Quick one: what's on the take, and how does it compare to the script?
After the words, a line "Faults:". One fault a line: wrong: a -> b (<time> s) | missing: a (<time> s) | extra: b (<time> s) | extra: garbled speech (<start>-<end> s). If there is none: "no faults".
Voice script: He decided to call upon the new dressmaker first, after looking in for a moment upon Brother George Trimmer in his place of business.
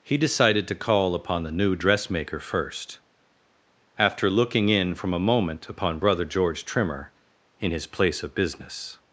He decided to call upon the new dressmaker first, after looking in from a moment upon Brother George Trimmer in his place of business.
Faults:
wrong: for -> from (5.0 s)